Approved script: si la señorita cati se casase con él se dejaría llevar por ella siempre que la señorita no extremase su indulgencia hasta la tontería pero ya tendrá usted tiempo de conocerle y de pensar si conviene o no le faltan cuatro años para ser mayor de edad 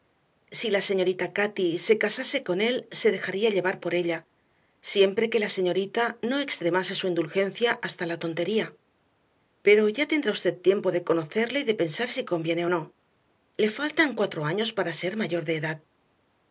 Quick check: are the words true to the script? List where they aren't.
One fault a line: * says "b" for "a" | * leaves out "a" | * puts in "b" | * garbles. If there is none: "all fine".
all fine